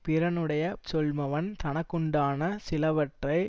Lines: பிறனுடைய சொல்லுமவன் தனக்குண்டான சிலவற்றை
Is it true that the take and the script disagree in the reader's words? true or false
false